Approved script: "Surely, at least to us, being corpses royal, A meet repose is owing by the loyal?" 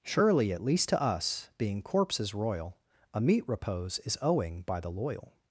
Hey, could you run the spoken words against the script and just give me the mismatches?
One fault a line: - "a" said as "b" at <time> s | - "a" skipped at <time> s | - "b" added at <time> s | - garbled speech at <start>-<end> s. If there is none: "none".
none